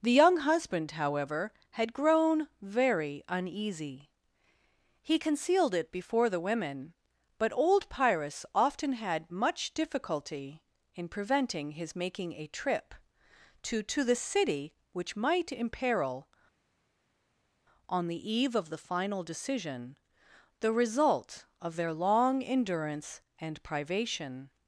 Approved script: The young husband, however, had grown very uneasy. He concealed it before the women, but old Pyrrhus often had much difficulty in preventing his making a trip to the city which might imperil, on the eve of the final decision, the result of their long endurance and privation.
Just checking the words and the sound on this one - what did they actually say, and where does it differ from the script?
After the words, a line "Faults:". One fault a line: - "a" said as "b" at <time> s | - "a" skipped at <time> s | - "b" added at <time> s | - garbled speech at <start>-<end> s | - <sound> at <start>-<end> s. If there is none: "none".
The young husband, however, had grown very uneasy. He concealed it before the women, but old Pyrrhus often had much difficulty in preventing his making a trip to to the city which might imperil, on the eve of the final decision, the result of their long endurance and privation.
Faults:
- "to" added at 13.8 s